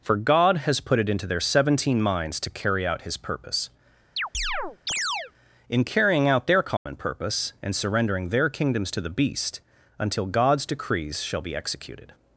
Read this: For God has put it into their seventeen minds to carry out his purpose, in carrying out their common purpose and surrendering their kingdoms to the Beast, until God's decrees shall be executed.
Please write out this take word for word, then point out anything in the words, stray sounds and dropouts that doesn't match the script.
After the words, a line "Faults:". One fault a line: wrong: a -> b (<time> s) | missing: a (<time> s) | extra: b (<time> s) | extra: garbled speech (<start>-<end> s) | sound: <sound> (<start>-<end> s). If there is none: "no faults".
For God has put it into their seventeen minds to carry out his purpose, in carrying out their common purpose and surrendering their kingdoms to the Beast, until God's decrees shall be executed.
Faults:
sound: chirp (4.2-5.3 s)
sound: dropout (6.8-6.9 s)